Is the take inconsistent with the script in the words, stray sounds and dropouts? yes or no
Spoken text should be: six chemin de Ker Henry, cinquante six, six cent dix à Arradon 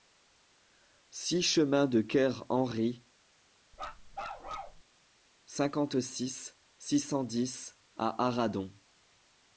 yes